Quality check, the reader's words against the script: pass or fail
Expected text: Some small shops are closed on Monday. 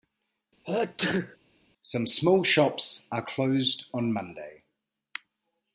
pass